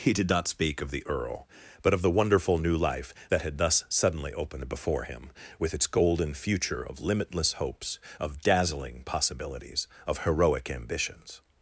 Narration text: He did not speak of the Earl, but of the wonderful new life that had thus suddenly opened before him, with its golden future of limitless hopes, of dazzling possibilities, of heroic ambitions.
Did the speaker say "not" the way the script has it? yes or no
yes